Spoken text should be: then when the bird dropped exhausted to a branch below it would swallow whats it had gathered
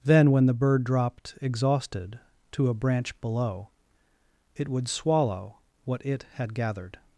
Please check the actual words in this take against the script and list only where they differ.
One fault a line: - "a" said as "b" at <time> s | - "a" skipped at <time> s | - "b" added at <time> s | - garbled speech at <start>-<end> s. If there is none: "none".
- "whats" said as "what" at 5.8 s